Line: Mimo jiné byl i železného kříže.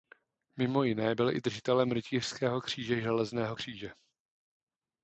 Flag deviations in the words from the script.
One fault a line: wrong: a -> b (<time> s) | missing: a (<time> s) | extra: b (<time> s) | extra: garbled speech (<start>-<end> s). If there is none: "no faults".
extra: držitelem Rytířského kříže (1.4 s)